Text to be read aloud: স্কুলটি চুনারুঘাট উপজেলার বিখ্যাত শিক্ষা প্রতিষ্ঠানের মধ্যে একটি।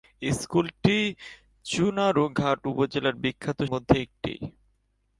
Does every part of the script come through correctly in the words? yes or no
no